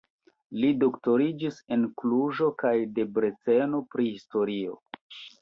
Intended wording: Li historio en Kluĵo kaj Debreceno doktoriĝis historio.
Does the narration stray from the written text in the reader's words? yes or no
yes